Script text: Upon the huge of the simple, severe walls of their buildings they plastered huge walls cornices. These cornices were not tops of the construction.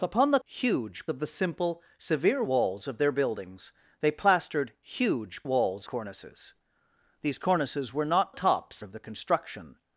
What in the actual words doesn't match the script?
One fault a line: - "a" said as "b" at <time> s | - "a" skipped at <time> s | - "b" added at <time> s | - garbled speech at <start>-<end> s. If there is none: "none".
none